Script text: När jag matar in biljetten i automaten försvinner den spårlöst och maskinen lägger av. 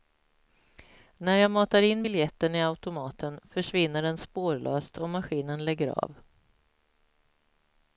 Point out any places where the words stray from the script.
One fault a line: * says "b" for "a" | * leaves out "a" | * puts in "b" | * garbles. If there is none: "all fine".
all fine